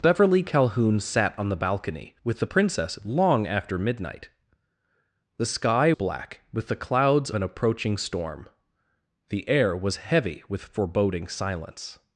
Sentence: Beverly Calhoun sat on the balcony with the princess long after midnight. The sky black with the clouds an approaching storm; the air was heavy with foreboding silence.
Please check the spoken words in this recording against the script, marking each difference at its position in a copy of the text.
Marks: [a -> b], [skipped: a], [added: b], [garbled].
Beverly Calhoun sat on the balcony with the princess long after midnight. The sky black with the clouds an approaching storm; the air was heavy with foreboding silence.